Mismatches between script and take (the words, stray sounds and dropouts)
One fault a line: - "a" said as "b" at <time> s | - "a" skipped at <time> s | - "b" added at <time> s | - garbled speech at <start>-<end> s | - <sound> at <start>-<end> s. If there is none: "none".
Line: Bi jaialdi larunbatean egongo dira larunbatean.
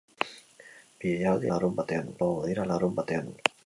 none